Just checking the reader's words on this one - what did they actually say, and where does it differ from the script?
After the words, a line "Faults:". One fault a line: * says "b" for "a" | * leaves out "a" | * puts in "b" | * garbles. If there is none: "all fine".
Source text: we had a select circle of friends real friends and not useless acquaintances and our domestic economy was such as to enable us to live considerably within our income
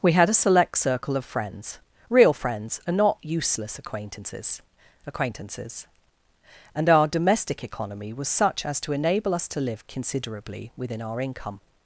we had a select circle of friends real friends and not useless acquaintances acquaintances and our domestic economy was such as to enable us to live considerably within our income
Faults:
* puts in "acquaintances"